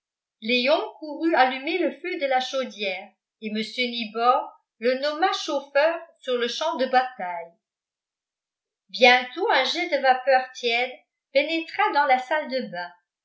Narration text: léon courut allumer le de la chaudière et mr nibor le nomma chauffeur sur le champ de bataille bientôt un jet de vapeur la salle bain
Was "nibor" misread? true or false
false